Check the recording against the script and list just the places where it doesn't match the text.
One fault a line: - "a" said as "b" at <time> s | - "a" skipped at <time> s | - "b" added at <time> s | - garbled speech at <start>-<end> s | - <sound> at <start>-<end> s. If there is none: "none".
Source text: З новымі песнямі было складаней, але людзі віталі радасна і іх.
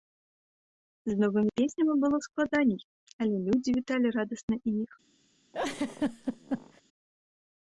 - laugh at 5.5-6.8 s